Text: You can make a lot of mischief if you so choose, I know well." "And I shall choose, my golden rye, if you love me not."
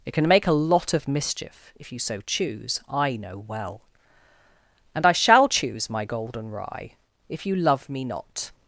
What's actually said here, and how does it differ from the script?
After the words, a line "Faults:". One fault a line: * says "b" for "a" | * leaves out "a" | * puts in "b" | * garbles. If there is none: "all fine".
It can make a lot of mischief if you so choose, I know well." "And I shall choose, my golden rye, if you love me not."
Faults:
* says "It" for "You"